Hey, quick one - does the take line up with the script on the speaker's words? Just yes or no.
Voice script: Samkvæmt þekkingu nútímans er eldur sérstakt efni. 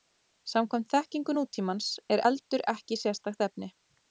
no